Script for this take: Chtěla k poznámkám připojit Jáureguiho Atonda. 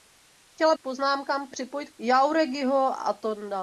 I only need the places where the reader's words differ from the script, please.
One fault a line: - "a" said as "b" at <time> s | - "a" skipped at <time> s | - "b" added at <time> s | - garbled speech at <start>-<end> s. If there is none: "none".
none